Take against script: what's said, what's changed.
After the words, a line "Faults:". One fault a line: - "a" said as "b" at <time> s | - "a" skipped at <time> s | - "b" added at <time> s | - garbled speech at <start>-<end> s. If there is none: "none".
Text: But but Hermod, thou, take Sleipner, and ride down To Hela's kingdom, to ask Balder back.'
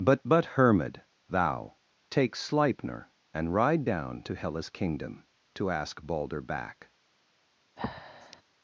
But but Hermod, thou, take Sleipner, and ride down To Hela's kingdom, to ask Balder back.'
Faults:
none